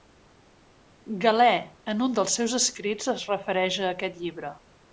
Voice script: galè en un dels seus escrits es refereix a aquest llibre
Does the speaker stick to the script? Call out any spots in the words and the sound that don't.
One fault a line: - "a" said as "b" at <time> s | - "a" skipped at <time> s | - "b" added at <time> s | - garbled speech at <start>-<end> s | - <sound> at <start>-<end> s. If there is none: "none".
none